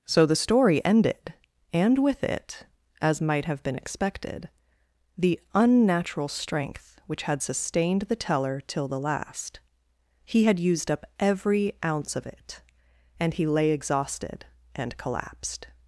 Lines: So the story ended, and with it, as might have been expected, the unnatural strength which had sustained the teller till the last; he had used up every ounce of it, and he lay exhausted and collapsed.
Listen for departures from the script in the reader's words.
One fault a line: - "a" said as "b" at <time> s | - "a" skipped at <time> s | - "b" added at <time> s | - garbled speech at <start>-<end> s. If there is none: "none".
none